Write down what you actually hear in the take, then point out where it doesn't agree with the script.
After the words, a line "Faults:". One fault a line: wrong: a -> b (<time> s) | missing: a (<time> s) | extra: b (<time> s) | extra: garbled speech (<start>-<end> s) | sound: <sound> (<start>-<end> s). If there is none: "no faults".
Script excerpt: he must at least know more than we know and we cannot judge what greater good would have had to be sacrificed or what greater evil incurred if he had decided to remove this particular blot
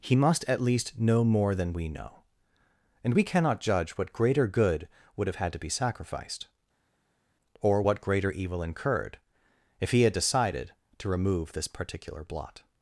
he must at least know more than we know and we cannot judge what greater good would have had to be sacrificed or what greater evil incurred if he had decided to remove this particular blot
Faults:
no faults